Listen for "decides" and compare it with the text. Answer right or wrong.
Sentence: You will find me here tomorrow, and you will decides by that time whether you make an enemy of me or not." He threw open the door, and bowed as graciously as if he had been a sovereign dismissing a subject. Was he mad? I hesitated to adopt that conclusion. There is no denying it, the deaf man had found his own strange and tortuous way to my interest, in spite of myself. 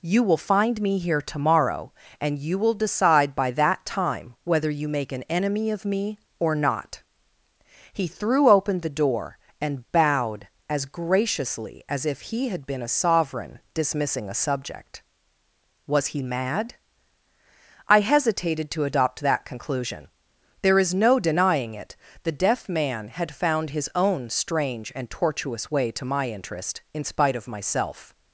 wrong